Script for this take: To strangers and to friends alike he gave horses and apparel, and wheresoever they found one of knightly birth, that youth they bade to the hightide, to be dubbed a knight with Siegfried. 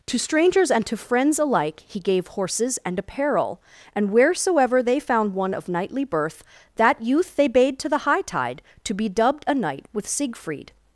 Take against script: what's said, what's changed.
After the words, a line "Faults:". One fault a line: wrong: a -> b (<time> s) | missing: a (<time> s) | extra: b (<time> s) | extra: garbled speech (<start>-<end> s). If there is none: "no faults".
To strangers and to friends alike he gave horses and apparel, and wheresoever they found one of knightly birth, that youth they bade to the hightide, to be dubbed a knight with Siegfried.
Faults:
no faults